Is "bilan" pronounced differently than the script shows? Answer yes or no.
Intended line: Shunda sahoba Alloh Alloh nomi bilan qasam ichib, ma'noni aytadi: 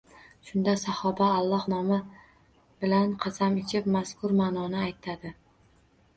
no